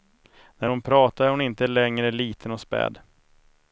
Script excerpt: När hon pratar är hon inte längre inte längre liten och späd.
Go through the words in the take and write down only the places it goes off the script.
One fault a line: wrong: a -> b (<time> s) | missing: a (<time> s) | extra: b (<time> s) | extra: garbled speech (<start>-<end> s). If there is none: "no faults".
missing: inte längre (2.1 s)